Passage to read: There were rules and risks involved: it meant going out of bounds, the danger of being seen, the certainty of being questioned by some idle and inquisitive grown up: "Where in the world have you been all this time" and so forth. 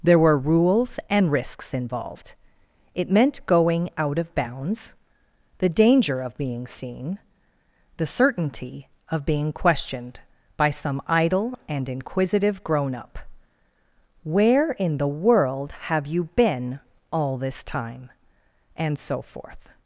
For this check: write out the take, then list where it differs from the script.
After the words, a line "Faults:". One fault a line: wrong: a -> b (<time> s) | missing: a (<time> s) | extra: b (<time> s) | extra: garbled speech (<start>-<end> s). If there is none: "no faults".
There were rules and risks involved: it meant going out of bounds, the danger of being seen, the certainty of being questioned by some idle and inquisitive grown up: "Where in the world have you been all this time" and so forth.
Faults:
no faults